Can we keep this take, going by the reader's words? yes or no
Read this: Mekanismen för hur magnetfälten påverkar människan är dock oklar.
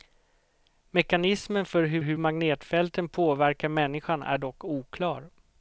no